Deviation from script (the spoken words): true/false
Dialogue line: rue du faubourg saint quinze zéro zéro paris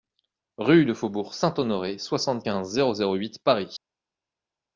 true